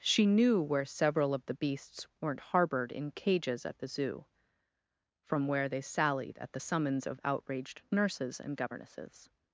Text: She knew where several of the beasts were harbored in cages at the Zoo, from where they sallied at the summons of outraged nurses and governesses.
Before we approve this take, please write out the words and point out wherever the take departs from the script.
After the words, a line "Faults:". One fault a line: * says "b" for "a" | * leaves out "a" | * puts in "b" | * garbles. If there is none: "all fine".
She knew where several of the beasts weren't harbored in cages at the Zoo, from where they sallied at the summons of outraged nurses and governesses.
Faults:
* says "weren't" for "were"